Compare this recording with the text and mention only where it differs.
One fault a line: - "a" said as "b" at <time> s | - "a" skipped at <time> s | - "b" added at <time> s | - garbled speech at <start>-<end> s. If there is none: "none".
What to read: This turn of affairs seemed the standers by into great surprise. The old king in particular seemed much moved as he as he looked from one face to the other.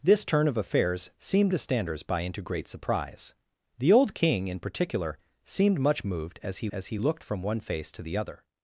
none